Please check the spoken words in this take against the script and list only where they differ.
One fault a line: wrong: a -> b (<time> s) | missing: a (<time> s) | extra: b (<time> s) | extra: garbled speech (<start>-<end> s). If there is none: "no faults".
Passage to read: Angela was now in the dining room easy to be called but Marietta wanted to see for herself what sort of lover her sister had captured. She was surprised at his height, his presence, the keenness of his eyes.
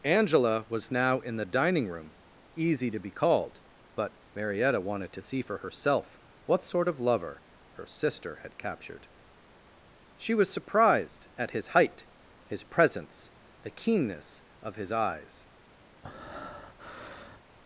no faults